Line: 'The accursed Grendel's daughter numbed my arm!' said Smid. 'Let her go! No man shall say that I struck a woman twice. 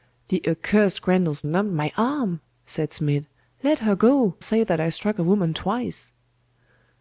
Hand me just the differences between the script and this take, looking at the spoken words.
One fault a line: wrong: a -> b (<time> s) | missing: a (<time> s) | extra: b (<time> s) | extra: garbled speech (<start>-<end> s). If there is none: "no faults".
missing: daughter (1.4 s)
missing: No man shall (4.3 s)